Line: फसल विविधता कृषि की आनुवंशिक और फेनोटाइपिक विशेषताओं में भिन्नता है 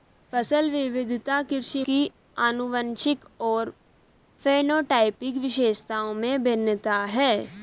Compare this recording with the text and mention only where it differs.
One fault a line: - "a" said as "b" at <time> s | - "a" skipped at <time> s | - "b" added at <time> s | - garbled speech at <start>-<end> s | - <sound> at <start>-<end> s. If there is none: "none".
none